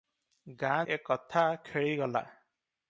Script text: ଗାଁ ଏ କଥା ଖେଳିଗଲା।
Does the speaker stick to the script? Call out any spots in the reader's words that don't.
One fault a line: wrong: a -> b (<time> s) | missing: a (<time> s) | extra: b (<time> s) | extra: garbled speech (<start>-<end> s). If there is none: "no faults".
no faults